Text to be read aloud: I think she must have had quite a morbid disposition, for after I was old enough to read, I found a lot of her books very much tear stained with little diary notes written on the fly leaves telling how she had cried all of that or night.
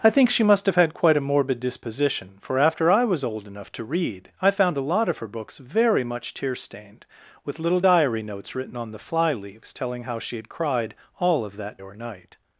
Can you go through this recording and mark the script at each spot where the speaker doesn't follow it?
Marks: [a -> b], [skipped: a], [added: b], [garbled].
I think she must have had quite a morbid disposition, for after I was old enough to read, I found a lot of her books very much tear stained with little diary notes written on the fly leaves telling how she had cried all of that or night.